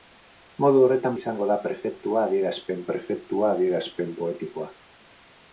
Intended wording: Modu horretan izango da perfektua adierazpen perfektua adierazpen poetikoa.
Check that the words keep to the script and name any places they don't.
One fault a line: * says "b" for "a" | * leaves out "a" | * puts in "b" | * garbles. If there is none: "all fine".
all fine